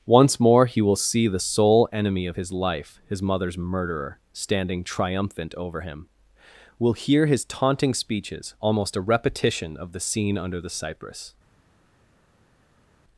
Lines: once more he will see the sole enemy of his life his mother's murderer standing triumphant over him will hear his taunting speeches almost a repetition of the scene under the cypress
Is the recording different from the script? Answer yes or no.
no